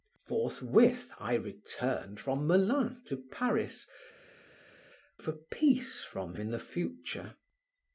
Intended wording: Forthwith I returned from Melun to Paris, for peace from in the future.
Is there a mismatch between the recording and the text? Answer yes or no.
no